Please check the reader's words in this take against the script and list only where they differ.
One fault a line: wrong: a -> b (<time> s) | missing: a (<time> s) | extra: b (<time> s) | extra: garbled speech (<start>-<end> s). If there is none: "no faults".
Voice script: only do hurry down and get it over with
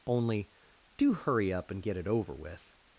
wrong: down -> up (1.5 s)